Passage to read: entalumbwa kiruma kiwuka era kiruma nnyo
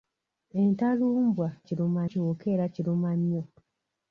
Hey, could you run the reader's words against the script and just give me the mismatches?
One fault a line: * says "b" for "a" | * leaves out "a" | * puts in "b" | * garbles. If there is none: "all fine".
all fine